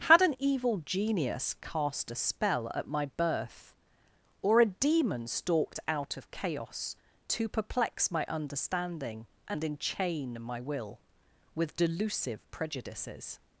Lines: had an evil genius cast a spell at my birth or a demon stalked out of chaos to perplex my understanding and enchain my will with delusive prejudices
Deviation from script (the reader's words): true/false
false